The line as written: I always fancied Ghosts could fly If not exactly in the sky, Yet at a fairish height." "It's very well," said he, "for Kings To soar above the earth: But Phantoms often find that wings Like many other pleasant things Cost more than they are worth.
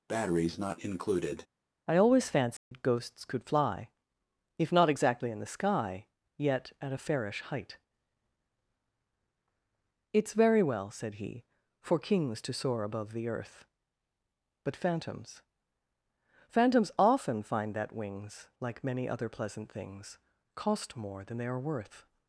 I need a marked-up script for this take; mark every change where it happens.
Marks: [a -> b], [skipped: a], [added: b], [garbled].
I always fancied Ghosts could fly If not exactly in the sky, Yet at a fairish height." "It's very well," said he, "for Kings To soar above the earth: But Phantoms [added: Phantoms] often find that wings Like many other pleasant things Cost more than they are worth.